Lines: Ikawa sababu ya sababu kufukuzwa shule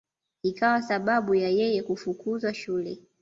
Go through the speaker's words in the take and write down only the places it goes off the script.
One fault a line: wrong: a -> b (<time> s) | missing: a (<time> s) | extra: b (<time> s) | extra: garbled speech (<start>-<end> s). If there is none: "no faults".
wrong: sababu -> yeye (1.5 s)